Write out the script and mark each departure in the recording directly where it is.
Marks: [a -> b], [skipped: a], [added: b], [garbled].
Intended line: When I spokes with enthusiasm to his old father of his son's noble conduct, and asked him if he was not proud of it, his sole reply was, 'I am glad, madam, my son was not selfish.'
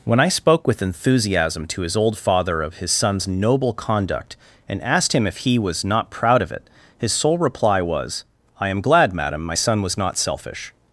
When I [spokes -> spoke] with enthusiasm to his old father of his son's noble conduct, and asked him if he was not proud of it, his sole reply was, 'I am glad, madam, my son was not selfish.'